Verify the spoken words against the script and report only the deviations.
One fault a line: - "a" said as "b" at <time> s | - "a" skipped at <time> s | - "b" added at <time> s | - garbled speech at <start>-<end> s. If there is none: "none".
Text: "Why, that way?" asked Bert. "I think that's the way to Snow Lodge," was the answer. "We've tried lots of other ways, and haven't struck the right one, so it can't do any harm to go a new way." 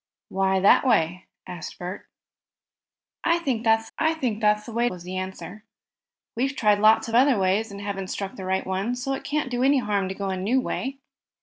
- "the way to Snow Lodge" said as "I think that's the way" at 4.0 s